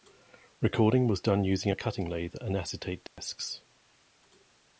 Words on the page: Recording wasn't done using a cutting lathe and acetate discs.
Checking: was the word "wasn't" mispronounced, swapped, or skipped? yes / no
yes